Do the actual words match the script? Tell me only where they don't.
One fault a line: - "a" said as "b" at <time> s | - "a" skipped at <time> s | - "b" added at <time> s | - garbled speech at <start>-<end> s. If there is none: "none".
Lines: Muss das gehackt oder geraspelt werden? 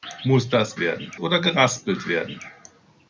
- "gehackt" said as "werden" at 0.8 s